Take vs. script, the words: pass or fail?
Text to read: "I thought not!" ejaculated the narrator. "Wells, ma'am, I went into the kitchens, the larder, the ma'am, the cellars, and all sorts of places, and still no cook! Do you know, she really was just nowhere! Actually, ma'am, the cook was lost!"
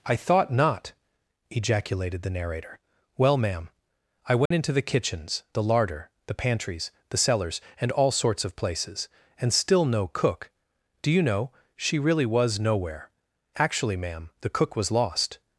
fail